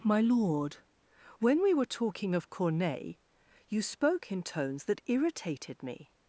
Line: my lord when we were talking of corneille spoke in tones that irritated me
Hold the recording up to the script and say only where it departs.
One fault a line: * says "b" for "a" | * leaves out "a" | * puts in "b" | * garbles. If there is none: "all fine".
* puts in "you"